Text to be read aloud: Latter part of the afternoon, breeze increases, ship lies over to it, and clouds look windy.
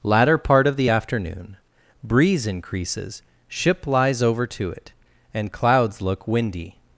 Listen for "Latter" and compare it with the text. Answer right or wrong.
right